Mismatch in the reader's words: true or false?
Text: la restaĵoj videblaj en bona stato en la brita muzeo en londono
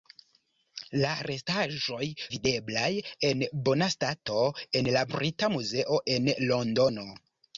false